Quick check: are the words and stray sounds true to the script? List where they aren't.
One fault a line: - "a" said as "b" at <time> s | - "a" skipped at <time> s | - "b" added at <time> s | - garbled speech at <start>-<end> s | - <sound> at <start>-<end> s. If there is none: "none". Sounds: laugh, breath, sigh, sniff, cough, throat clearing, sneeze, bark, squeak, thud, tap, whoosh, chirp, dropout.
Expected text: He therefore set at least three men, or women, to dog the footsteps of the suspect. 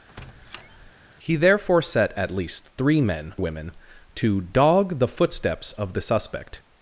- squeak at 0.1-0.9 s
- "or" skipped at 3.3 s